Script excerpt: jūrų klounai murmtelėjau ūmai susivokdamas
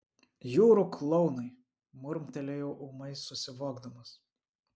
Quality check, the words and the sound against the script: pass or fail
pass